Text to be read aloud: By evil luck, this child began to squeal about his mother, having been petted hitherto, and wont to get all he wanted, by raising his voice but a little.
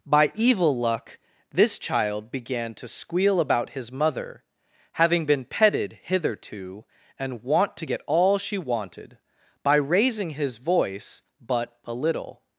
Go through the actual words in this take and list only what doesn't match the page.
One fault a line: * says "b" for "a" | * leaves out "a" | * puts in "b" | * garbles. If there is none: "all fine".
* says "she" for "he"